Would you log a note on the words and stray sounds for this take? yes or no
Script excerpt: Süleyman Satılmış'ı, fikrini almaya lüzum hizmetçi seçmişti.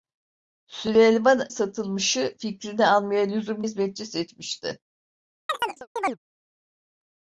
yes